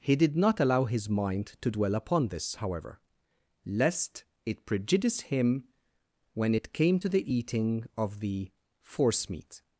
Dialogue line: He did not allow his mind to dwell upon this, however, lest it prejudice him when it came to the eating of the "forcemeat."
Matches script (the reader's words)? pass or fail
pass